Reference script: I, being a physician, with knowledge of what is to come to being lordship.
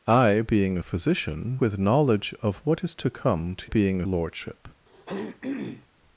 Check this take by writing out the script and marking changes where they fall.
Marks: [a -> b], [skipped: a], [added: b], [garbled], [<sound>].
I, being a physician, with knowledge of what is to come to being lordship. [throat clearing]